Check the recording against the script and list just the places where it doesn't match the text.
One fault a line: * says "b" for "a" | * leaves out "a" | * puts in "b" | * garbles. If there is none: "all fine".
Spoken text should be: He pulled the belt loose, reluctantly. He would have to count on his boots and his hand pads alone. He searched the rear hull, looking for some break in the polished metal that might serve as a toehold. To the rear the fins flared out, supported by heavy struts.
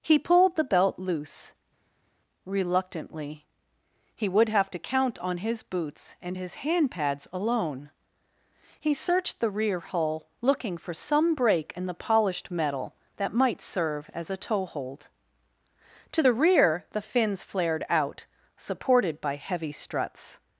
all fine